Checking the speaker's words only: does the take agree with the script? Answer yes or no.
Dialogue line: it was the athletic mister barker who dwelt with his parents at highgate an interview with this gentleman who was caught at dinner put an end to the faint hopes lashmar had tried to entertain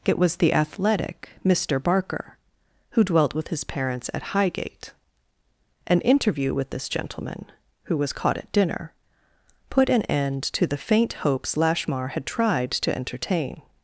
yes